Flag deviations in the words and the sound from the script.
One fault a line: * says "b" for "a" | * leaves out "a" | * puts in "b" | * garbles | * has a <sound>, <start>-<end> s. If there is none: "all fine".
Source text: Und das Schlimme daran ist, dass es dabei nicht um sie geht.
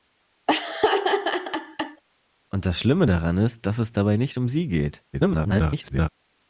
* has a laugh, 0.5-2.0 s
* garbles